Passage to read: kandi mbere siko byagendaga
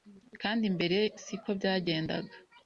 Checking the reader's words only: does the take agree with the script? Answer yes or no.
yes